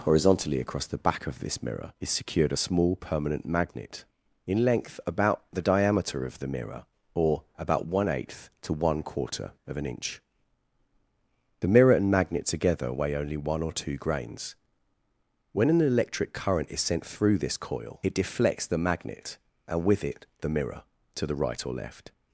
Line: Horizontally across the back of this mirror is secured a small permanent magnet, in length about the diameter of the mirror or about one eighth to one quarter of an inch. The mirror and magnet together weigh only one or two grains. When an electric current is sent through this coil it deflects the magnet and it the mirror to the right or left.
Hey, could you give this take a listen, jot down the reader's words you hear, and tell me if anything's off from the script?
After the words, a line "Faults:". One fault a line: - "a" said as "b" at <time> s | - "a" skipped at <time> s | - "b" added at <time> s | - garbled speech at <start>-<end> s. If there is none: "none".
Horizontally across the back of this mirror is secured a small permanent magnet, in length about the diameter of the mirror or about one eighth to one quarter of an inch. The mirror and magnet together weigh only one or two grains. When an electric current is sent through this coil it deflects the magnet and with it the mirror to the right or left.
Faults:
- "with" added at 19.8 s